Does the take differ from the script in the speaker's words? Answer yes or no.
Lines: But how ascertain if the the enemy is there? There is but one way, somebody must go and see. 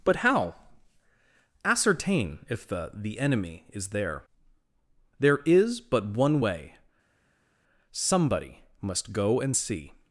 no